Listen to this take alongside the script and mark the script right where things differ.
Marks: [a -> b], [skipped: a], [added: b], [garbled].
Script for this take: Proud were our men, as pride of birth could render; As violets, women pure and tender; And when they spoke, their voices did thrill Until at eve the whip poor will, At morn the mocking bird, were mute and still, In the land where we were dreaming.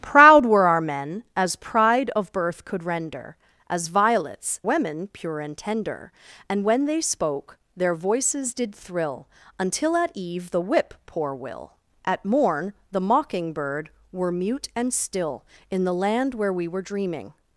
Proud were our men, as pride of birth could render; As violets, women pure and tender; And when they spoke, their voices did thrill Until at eve the whip poor will, At morn the mocking bird, were mute and still, In the land where we were dreaming.